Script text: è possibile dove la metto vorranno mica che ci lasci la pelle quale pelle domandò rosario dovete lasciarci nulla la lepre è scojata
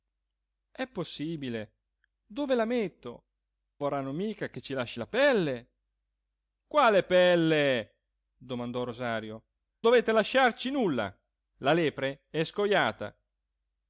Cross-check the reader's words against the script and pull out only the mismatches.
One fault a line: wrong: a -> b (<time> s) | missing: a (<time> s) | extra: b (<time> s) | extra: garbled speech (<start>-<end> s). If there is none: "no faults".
no faults